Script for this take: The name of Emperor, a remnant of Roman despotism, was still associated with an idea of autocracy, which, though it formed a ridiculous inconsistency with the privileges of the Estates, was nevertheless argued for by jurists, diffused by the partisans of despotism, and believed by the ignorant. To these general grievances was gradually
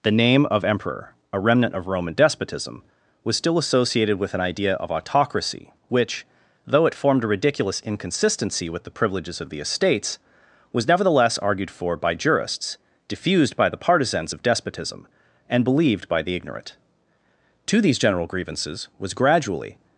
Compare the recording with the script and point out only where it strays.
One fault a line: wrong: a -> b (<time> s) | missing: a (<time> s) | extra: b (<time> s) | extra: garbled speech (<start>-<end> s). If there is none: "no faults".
no faults